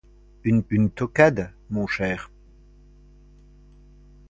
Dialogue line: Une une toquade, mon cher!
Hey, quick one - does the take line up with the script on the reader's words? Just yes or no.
yes